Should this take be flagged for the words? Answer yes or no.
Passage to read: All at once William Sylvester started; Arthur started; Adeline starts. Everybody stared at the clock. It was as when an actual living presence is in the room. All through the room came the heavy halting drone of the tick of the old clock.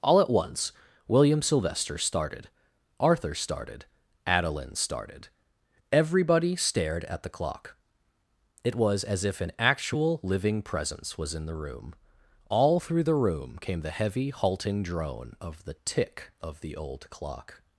yes